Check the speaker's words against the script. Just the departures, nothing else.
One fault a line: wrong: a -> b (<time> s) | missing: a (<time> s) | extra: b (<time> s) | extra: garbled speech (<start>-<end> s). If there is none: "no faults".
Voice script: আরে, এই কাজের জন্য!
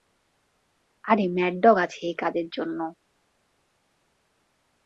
extra: ম্যাড ডগ আছে (1.4 s)